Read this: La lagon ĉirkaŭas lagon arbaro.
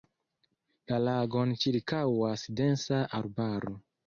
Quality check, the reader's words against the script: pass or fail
fail